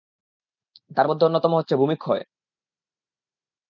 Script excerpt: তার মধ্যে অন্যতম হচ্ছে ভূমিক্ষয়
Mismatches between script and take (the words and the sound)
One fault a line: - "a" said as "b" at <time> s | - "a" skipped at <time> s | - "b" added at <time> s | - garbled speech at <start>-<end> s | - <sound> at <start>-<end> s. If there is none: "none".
none